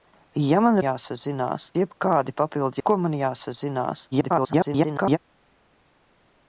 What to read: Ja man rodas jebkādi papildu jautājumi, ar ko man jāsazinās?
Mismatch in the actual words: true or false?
true